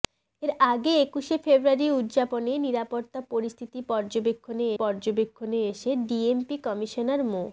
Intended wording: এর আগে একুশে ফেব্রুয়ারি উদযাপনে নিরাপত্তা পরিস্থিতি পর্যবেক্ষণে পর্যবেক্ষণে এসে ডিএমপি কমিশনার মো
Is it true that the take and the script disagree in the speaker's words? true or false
false